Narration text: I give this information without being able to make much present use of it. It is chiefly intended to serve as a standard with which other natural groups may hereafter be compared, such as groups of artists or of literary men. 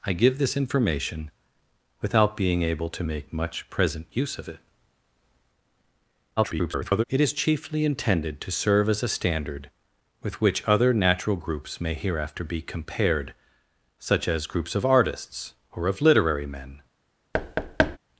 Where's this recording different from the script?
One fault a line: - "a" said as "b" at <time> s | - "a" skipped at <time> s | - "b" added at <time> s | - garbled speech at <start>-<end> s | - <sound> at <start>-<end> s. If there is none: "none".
- garbled speech at 6.4-7.0 s
- thud at 17.3-18.0 s